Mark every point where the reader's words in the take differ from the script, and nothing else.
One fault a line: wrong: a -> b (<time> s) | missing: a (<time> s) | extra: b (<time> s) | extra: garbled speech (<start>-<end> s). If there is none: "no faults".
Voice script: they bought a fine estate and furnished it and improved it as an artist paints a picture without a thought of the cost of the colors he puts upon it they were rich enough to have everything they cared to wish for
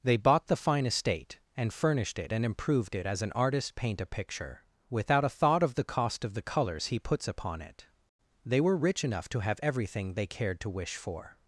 wrong: a -> the (0.5 s)
wrong: paints -> paint (3.8 s)